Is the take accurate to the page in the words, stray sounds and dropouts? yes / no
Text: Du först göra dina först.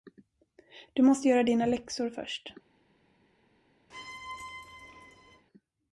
no